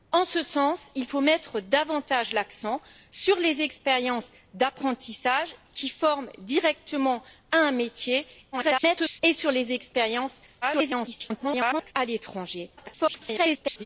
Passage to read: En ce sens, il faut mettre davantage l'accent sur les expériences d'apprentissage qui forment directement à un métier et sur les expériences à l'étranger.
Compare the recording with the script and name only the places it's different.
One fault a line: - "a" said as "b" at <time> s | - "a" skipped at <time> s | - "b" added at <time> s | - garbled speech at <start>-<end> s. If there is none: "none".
- garbled speech at 8.5-9.2 s
- garbled speech at 10.6-11.9 s
- garbled speech at 12.8-13.9 s